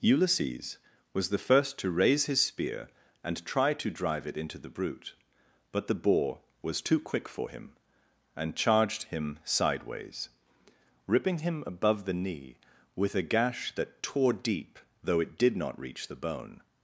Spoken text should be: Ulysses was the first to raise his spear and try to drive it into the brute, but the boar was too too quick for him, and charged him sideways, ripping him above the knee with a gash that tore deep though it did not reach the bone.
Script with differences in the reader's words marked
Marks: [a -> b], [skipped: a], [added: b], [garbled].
Ulysses was the first to raise his spear and try to drive it into the brute, but the boar was too [skipped: too] quick for him, and charged him sideways, ripping him above the knee with a gash that tore deep though it did not reach the bone.